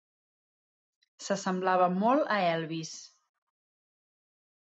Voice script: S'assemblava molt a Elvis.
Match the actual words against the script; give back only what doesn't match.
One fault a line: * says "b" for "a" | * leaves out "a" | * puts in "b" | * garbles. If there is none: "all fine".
all fine